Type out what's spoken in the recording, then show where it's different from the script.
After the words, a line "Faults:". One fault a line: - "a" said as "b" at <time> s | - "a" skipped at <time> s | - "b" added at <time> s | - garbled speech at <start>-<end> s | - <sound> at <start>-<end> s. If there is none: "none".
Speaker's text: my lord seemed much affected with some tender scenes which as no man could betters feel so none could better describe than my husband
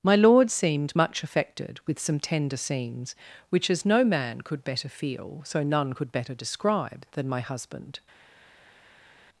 my lord seemed much affected with some tender scenes which as no man could better feel so none could better describe than my husband
Faults:
- "betters" said as "better" at 4.6 s